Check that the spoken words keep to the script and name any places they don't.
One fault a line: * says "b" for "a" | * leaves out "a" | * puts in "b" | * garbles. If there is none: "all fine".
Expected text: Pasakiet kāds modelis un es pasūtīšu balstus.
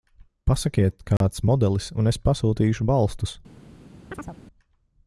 all fine